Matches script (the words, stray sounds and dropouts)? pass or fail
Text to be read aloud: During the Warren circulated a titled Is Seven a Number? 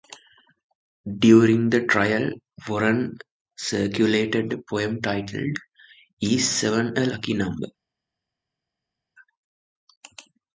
fail